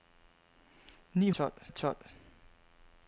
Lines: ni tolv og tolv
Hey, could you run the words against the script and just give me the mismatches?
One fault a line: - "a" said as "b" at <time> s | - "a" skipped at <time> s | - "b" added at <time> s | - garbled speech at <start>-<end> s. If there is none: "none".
none